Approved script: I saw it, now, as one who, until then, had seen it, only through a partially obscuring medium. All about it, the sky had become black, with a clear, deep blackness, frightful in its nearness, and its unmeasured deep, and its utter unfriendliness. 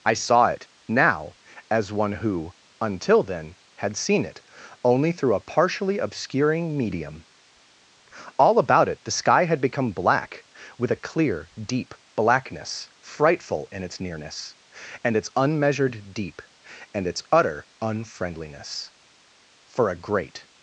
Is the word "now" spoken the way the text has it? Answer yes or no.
yes